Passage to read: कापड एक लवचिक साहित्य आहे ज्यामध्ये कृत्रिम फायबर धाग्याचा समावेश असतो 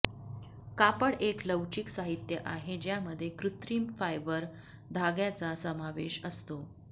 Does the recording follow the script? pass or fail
pass